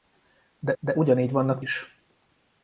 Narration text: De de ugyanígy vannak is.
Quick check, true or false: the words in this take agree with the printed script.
true